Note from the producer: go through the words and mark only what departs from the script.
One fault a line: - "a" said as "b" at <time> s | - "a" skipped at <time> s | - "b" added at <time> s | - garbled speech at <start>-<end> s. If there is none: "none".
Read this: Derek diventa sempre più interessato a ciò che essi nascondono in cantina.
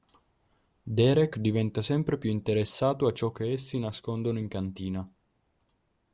none